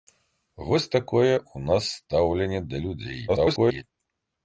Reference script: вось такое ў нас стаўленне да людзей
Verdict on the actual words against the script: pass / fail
fail